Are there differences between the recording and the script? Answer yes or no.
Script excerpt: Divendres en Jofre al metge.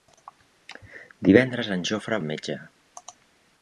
no